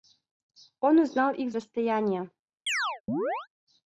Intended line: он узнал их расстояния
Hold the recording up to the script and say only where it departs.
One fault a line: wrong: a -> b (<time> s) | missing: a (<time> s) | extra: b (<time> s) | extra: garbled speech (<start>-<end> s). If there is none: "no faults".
no faults